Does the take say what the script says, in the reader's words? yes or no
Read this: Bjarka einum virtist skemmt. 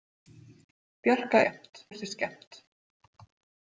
no